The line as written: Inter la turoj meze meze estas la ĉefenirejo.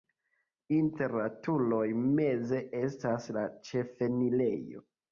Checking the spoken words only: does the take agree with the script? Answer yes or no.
no